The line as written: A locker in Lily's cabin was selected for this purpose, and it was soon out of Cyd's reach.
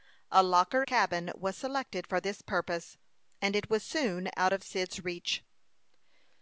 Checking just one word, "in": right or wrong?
wrong